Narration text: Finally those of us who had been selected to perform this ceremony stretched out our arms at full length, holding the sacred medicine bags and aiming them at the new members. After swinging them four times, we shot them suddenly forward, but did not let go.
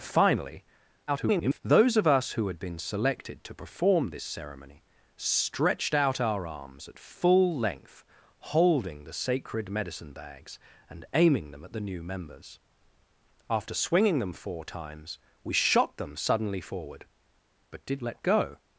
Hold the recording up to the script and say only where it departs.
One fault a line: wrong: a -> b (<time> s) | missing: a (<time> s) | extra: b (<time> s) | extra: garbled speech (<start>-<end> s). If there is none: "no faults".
extra: garbled speech (1.1-1.6 s)
missing: not (18.0 s)